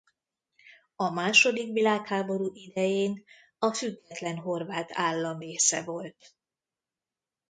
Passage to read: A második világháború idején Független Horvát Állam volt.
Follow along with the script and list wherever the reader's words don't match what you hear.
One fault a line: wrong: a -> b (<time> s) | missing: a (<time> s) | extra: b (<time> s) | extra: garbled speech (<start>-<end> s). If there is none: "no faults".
extra: a (3.6 s)
extra: része (5.4 s)